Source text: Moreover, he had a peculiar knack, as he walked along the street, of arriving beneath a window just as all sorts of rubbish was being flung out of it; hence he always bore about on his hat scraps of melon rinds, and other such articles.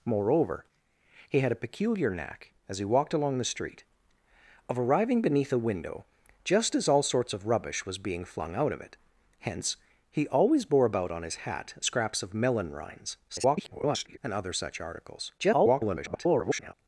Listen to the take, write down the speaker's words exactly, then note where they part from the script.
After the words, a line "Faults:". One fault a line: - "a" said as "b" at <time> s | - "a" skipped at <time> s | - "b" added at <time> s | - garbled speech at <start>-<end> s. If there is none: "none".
Moreover, he had a peculiar knack, as he walked along the street, of arriving beneath a window just as all sorts of rubbish was being flung out of it; hence he always bore about on his hat scraps of melon rinds, [garbled] and other such articles. [garbled]
Faults:
- garbled speech at 13.3-14.2 s
- garbled speech at 15.4-16.7 s